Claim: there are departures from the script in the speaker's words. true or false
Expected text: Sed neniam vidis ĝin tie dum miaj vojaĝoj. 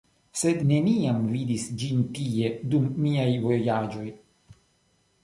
false